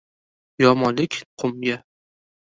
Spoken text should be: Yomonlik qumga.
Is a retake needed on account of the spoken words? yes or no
no